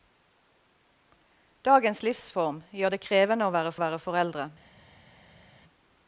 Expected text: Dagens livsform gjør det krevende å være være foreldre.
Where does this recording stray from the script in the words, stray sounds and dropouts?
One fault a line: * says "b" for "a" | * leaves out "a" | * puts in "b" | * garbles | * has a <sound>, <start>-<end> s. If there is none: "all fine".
all fine